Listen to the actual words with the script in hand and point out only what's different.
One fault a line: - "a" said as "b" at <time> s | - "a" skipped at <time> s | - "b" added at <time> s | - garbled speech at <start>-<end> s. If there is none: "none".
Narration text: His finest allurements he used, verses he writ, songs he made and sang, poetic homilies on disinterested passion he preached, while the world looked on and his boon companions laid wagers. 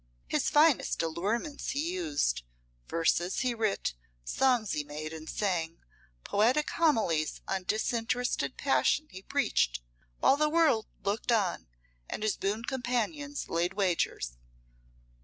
none